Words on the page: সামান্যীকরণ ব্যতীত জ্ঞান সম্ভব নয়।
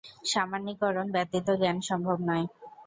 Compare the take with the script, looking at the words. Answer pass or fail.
pass